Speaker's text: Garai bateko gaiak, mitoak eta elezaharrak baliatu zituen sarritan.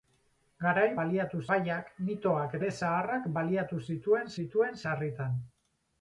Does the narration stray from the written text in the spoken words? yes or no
yes